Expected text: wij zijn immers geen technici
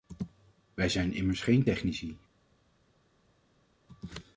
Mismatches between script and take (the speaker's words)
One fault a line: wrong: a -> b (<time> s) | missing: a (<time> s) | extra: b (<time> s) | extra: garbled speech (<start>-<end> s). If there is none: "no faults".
no faults